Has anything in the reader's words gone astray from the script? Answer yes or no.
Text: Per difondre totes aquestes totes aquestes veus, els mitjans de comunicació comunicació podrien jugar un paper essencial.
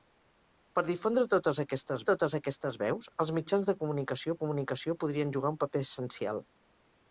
no